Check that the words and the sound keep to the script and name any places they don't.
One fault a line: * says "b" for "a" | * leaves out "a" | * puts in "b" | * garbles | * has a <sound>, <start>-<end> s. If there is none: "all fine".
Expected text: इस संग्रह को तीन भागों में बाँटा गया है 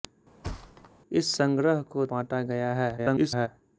* has a thud, 0.4-0.9 s
* leaves out "तीन भागों में"
* garbles